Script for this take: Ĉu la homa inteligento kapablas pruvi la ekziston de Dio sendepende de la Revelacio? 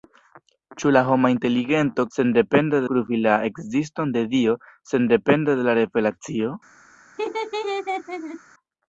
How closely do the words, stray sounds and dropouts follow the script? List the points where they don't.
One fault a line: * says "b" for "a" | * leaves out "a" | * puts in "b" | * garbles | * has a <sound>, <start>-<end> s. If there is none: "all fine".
* says "sendepende" for "kapablas"
* has a laugh, 7.2-8.4 s